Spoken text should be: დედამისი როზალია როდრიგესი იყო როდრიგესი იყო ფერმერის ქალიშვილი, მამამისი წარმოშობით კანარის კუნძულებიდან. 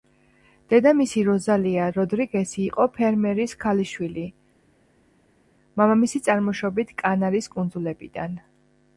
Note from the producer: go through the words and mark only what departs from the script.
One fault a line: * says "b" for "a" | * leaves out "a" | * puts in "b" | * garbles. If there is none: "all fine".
* leaves out "როდრიგესი იყო"